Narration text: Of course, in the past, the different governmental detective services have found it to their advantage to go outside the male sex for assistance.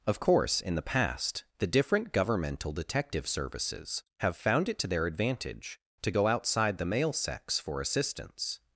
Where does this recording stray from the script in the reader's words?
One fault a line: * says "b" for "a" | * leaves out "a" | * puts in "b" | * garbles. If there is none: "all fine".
all fine